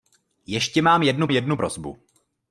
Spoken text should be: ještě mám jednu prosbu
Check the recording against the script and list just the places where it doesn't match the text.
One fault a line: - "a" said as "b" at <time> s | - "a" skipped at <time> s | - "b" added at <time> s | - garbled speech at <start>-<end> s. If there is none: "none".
- "jednu" added at 1.3 s